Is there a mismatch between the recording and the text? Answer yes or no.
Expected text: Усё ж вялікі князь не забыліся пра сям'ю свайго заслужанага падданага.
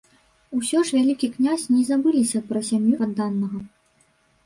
yes